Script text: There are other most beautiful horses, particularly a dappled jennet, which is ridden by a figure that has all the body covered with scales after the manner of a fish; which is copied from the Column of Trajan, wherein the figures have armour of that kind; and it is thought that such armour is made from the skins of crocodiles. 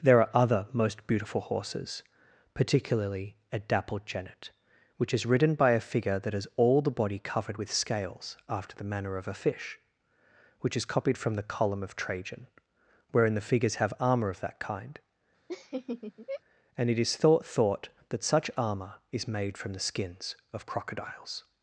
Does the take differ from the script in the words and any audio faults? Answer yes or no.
yes